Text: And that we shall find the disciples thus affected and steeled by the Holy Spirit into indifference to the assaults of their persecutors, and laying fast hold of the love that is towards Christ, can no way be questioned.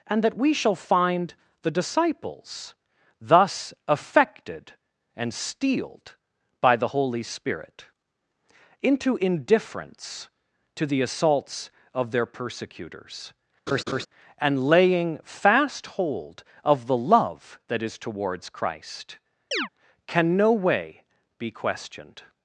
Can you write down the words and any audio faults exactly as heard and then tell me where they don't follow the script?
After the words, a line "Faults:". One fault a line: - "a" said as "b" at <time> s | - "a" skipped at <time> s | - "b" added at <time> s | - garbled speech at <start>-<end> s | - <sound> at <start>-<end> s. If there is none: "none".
And that we shall find the disciples thus affected and steeled by the Holy Spirit into indifference to the assaults of their persecutors, and laying fast hold of the love that is towards Christ, can no way be questioned.
Faults:
- laugh at 13.7-14.1 s
- chirp at 19.5-19.7 s